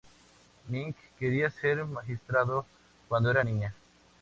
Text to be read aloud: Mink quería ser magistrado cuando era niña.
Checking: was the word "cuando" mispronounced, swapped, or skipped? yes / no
no